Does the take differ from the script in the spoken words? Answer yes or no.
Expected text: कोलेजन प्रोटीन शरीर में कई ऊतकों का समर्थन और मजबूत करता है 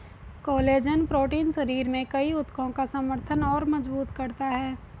no